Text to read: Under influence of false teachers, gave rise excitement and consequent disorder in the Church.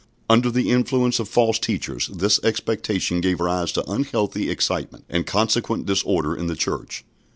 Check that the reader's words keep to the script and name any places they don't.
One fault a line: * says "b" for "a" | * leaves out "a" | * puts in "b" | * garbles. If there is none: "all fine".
* puts in "the"
* puts in "this expectation"
* puts in "to unhealthy"